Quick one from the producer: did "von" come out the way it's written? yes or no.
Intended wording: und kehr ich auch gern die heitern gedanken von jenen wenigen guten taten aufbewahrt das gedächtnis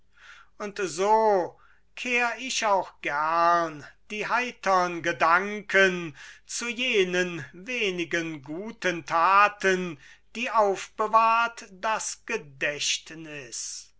no